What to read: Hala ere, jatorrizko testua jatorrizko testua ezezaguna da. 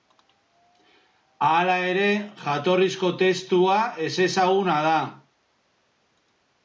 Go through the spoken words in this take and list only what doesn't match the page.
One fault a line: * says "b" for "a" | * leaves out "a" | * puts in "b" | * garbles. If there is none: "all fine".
* leaves out "jatorrizko testua"